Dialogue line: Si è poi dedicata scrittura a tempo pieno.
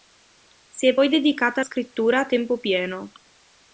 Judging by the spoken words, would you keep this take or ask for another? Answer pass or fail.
pass